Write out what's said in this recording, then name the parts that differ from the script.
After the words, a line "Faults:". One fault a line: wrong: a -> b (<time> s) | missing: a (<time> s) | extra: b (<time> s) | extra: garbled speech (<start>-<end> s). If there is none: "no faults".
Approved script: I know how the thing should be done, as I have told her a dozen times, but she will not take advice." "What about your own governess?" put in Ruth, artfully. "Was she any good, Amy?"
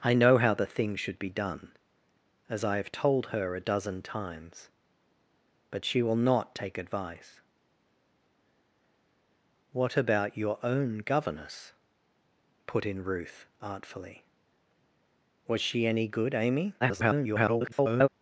I know how the thing should be done, as I have told her a dozen times, but she will not take advice." "What about your own governess?" put in Ruth, artfully. "Was she any good, Amy?" [garbled]
Faults:
extra: garbled speech (16.8-18.1 s)